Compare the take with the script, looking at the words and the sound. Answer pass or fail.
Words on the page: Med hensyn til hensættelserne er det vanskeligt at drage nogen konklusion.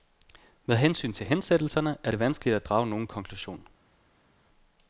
pass